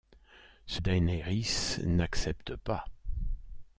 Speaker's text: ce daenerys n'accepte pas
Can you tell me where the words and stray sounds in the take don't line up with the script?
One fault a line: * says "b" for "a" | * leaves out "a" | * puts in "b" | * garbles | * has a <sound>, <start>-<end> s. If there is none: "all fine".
all fine